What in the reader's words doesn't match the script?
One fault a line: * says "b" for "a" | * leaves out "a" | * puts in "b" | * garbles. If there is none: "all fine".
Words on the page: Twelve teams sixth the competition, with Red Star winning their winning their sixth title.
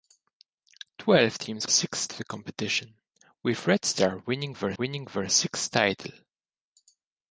all fine